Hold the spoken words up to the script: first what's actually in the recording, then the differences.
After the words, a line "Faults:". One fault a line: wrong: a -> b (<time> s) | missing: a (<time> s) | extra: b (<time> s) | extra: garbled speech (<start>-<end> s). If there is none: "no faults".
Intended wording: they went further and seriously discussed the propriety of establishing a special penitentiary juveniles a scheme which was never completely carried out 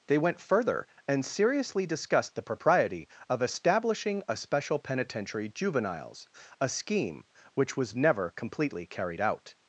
they went further and seriously discussed the propriety of establishing a special penitentiary juveniles a scheme which was never completely carried out
Faults:
no faults